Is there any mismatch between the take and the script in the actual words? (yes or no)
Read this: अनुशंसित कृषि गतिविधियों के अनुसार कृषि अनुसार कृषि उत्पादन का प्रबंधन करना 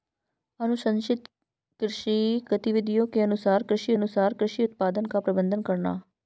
no